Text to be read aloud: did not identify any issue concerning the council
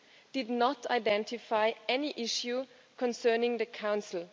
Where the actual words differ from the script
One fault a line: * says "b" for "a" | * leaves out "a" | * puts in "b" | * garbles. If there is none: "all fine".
all fine